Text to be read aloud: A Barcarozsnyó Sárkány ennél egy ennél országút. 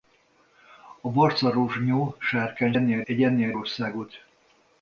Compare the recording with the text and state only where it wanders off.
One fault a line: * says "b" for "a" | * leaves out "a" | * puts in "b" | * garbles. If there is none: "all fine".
all fine